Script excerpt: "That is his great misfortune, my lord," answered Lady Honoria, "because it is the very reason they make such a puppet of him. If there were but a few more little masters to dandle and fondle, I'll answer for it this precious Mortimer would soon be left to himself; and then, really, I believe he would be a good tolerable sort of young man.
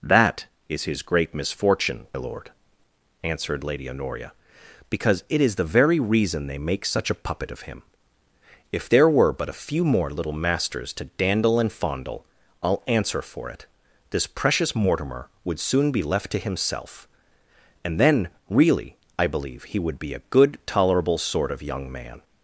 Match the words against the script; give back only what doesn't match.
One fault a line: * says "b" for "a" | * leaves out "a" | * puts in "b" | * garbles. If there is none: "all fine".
* leaves out "my"